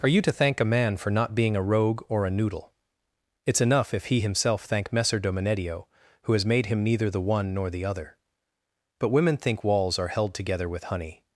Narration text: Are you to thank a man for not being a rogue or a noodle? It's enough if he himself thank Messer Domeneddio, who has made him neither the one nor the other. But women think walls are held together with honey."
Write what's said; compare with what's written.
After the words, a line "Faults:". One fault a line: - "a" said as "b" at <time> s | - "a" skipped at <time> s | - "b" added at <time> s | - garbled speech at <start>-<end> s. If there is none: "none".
Are you to thank a man for not being a rogue or a noodle? It's enough if he himself thank Messer Domeneddio, who has made him neither the one nor the other. But women think walls are held together with honey."
Faults:
none